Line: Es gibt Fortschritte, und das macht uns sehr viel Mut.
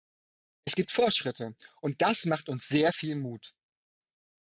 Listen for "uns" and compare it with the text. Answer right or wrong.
right